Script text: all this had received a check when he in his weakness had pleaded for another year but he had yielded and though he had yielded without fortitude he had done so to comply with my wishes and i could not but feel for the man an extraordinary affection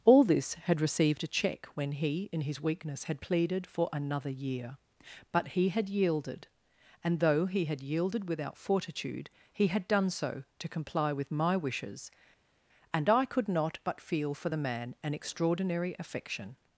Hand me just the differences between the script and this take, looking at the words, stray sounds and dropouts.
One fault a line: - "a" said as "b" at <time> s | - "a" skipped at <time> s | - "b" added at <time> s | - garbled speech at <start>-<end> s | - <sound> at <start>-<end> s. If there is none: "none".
none